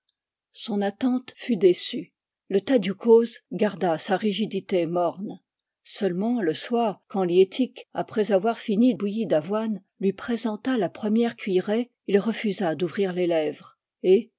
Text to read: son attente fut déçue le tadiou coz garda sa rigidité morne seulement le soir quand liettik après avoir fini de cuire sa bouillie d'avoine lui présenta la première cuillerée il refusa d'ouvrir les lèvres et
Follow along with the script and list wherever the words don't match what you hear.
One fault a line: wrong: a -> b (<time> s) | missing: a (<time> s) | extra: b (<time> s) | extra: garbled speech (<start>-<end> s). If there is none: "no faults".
missing: de cuire sa (8.9 s)